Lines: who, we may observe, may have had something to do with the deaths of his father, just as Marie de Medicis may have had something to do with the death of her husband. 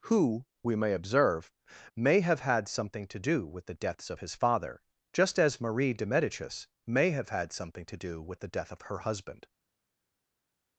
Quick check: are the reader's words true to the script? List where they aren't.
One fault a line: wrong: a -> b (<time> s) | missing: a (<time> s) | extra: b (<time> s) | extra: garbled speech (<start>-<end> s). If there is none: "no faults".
no faults